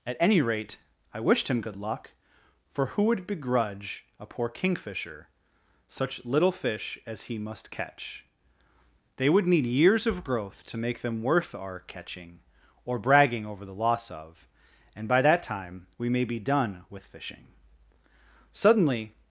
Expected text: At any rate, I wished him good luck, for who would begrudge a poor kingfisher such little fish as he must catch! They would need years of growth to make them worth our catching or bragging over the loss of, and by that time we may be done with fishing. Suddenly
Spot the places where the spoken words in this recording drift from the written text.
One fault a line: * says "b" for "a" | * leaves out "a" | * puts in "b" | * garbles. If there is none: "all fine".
all fine